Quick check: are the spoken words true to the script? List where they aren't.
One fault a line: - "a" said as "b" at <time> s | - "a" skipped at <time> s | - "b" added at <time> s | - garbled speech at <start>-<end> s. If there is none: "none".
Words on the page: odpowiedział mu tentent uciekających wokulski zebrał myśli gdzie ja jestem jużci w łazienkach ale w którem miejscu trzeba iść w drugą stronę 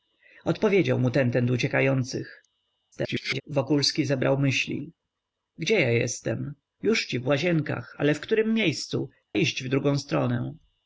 - garbled speech at 2.9-3.4 s
- "trzeba" skipped at 9.1 s